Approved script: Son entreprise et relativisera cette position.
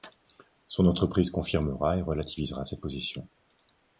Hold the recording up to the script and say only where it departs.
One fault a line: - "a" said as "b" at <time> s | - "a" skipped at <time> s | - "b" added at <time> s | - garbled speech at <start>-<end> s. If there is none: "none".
- "confirmera" added at 1.3 s